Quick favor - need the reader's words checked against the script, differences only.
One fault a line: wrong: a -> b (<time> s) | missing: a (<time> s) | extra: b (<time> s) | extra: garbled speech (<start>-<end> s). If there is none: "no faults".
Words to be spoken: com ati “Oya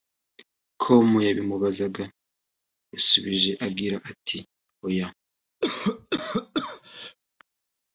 extra: yabimubazaga yasubije agira (1.3 s)